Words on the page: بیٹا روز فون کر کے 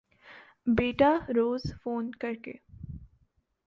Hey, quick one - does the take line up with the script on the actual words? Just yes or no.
yes